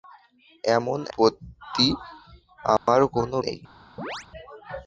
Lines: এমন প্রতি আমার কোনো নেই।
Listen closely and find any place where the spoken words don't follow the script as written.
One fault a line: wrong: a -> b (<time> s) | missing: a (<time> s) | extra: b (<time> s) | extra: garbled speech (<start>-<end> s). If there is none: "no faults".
no faults